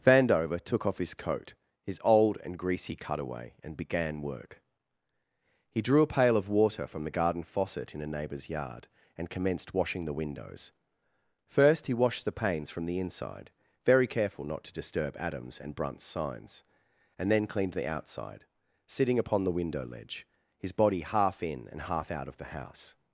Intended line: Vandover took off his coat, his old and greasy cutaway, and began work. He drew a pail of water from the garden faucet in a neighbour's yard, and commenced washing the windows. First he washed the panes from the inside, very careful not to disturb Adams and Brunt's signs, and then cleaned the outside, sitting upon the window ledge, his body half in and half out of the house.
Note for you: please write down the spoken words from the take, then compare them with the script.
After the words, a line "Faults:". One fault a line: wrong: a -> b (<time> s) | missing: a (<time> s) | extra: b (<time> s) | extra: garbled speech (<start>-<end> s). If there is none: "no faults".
Vandover took off his coat, his old and greasy cutaway, and began work. He drew a pail of water from the garden faucet in a neighbour's yard, and commenced washing the windows. First he washed the panes from the inside, very careful not to disturb Adams and Brunt's signs, and then cleaned the outside, sitting upon the window ledge, his body half in and half out of the house.
Faults:
no faults